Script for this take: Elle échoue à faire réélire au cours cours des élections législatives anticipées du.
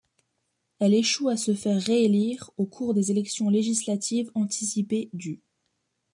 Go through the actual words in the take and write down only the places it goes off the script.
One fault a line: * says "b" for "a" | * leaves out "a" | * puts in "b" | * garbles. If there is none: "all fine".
* puts in "se"
* leaves out "cours"